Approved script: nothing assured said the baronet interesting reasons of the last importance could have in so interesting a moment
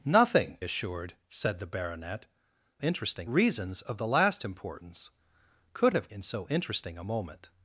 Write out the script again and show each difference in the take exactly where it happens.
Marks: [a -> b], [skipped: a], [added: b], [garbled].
nothing assured said the baronet interesting reasons of the last importance could have in so interesting a moment